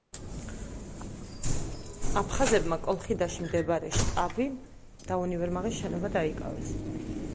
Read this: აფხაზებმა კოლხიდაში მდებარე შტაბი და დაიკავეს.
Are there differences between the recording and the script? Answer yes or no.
yes